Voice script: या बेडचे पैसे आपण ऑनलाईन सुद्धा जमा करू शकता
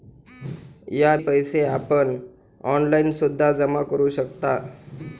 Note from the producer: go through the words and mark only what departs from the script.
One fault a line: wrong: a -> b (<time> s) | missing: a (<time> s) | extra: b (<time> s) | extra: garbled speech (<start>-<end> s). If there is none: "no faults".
missing: बेडचे (1.1 s)